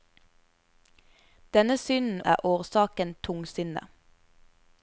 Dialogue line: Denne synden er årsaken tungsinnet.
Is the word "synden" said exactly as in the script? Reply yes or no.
yes